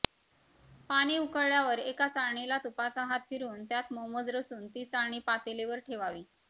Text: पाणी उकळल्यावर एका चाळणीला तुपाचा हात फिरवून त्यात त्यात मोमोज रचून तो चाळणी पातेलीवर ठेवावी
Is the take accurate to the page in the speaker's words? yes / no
no